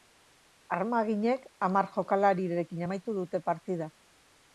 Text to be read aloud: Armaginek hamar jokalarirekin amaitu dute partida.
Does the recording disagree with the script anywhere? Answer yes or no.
no